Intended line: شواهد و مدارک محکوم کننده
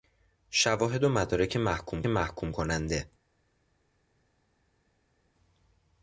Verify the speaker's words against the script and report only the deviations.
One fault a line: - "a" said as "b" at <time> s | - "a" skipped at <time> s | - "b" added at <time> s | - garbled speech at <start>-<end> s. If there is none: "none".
- "محکوم" added at 2.1 s